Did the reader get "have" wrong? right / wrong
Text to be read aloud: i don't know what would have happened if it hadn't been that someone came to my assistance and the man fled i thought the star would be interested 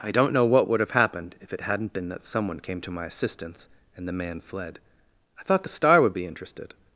right